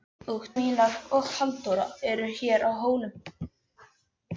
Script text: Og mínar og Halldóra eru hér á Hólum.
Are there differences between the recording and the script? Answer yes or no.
no